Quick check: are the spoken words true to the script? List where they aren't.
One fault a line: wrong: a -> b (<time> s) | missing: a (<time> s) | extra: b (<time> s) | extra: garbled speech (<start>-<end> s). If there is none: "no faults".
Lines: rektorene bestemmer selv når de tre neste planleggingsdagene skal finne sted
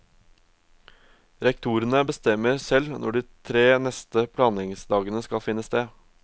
no faults